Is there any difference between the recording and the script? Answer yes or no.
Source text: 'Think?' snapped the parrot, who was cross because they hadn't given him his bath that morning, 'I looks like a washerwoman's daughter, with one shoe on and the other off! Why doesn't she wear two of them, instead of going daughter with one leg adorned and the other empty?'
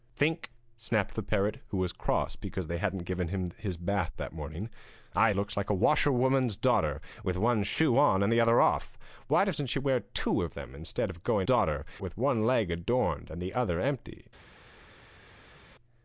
no